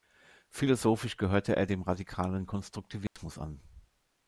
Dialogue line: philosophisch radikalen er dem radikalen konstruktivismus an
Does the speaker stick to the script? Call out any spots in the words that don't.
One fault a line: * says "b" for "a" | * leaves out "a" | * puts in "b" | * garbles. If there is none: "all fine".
* says "gehörte" for "radikalen"